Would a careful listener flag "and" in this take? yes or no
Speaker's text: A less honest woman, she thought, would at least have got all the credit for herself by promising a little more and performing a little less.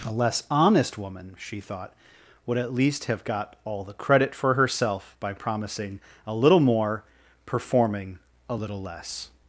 yes